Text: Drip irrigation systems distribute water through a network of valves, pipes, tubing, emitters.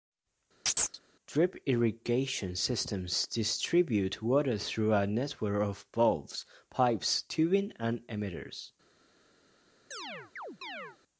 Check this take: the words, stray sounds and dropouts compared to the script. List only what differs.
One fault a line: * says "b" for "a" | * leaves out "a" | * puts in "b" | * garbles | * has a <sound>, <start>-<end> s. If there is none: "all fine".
* has a chirp, 0.7-1.0 s
* puts in "and"
* has a chirp, 9.9-11.0 s